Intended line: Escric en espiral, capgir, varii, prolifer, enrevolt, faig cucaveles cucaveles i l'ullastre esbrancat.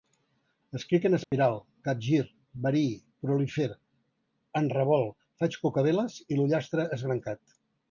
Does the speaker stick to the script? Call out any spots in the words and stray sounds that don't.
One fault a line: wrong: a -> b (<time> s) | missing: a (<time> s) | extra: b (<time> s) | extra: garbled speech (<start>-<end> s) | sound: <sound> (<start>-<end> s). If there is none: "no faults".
sound: dropout (1.2-1.3 s)
missing: cucaveles (6.2 s)